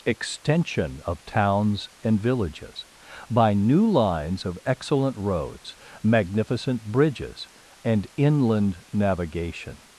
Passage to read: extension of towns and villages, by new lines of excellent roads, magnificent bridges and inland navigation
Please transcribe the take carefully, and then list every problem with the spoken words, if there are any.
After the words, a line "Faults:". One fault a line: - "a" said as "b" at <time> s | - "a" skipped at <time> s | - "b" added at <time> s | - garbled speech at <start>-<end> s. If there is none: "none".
extension of towns and villages, by new lines of excellent roads, magnificent bridges and inland navigation
Faults:
none